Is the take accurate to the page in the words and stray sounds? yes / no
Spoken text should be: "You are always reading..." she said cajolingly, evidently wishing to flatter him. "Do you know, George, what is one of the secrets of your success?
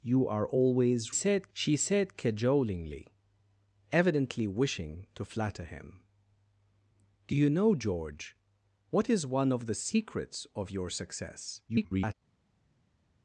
no